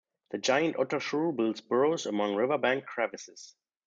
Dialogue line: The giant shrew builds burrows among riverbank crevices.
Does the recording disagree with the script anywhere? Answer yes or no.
yes